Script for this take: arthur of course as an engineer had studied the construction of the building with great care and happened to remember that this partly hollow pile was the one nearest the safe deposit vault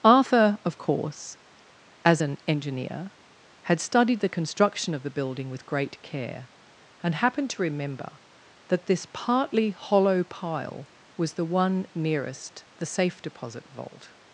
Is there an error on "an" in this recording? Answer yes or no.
no